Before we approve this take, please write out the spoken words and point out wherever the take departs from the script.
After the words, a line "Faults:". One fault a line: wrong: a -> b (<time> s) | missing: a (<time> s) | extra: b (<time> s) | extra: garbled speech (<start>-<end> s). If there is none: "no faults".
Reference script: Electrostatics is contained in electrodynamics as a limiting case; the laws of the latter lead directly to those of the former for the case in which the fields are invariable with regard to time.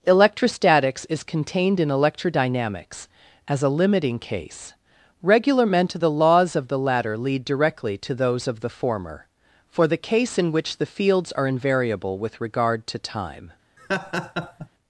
Electrostatics is contained in electrodynamics as a limiting case; regular men to the laws of the latter lead directly to those of the former for the case in which the fields are invariable with regard to time.
Faults:
extra: regular men to (5.2 s)